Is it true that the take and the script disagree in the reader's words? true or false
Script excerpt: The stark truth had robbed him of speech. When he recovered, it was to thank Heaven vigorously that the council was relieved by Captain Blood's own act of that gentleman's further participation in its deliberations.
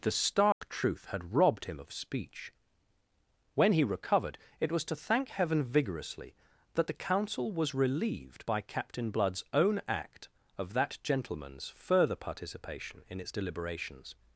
false